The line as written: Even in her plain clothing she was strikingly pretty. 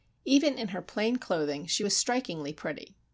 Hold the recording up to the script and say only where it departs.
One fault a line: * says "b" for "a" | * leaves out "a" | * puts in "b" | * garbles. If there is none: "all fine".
all fine